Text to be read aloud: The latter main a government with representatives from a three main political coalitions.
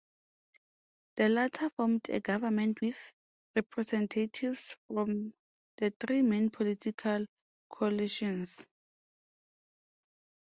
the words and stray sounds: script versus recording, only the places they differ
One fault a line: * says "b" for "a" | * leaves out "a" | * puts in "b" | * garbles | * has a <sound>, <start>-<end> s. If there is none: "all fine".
* says "formed" for "main"
* says "the" for "a"